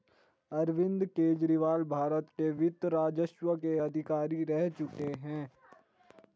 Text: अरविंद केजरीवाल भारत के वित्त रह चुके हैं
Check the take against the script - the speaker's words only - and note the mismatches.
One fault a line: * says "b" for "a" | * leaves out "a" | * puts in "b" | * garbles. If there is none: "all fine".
* puts in "राजस्व के अधिकारी"